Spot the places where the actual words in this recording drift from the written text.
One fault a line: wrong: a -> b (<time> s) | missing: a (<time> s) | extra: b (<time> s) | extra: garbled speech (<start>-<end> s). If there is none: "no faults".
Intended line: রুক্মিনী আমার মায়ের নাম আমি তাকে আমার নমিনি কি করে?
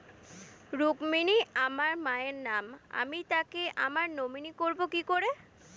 extra: করবো (4.6 s)